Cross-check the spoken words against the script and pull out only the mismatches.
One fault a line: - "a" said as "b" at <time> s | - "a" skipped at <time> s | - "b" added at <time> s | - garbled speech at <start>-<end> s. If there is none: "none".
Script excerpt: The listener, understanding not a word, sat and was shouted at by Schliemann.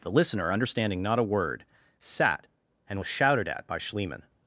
none